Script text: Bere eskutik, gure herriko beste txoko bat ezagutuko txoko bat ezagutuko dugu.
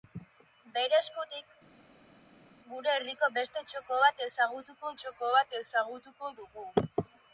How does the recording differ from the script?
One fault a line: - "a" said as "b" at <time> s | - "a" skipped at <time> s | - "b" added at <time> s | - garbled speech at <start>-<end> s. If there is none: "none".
none